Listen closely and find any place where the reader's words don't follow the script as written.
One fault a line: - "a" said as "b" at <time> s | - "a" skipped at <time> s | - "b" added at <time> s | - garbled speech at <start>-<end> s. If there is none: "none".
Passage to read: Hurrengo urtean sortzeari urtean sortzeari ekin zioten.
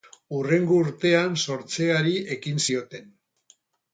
- "urtean sortzeari" skipped at 2.1 s